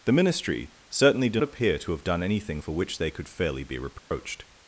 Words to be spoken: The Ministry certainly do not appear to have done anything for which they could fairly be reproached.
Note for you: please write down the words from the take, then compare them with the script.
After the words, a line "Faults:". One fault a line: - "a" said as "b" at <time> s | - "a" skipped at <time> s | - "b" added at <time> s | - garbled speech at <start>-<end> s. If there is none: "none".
The Ministry certainly do appear to have done anything for which they could fairly be reproached.
Faults:
- "not" skipped at 1.4 s